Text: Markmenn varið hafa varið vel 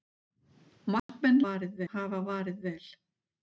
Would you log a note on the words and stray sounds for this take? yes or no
yes